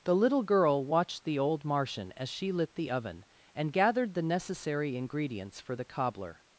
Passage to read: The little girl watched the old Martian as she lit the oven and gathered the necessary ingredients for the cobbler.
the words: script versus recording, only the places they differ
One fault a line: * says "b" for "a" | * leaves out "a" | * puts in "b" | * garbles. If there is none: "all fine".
all fine